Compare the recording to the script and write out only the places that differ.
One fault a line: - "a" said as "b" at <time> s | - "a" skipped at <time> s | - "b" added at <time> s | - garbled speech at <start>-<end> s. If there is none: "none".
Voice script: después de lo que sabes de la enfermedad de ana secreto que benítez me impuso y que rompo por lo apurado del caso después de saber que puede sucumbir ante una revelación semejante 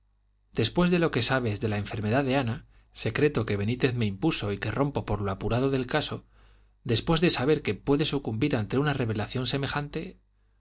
none